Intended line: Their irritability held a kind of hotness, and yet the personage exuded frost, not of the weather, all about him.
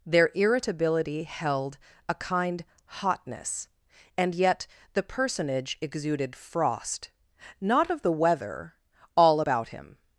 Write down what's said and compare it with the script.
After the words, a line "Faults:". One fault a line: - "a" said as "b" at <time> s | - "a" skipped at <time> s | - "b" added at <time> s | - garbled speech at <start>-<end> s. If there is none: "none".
Their irritability held a kind hotness, and yet the personage exuded frost, not of the weather, all about him.
Faults:
- "of" skipped at 2.6 s